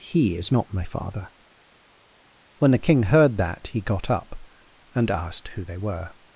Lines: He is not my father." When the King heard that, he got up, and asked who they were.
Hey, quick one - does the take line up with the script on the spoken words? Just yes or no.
yes